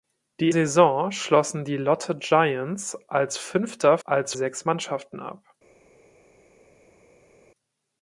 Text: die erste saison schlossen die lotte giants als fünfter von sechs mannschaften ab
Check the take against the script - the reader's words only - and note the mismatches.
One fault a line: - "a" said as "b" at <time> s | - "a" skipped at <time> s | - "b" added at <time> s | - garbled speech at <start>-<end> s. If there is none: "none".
- "erste" skipped at 0.5 s
- "von" said as "als" at 4.0 s